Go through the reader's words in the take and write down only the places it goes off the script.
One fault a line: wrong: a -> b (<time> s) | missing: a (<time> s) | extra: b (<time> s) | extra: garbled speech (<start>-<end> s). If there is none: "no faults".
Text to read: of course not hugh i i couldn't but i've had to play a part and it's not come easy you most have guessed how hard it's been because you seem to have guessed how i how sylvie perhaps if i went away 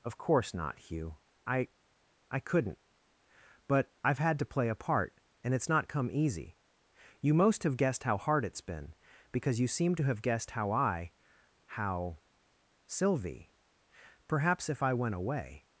no faults